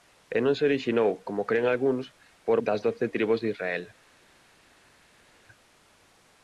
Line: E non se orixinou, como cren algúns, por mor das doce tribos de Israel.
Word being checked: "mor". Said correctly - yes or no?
no